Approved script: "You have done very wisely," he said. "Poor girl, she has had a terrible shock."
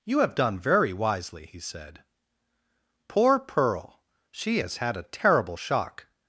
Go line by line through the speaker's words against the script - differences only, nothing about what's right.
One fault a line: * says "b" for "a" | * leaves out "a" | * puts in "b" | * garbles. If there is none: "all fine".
* says "pearl" for "girl"